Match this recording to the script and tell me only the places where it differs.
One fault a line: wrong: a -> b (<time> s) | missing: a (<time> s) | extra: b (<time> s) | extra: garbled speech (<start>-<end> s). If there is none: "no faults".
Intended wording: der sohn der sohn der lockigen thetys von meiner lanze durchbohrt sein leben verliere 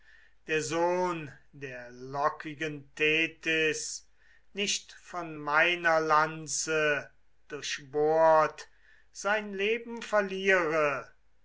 missing: sohn der (1.9 s)
extra: nicht (4.5 s)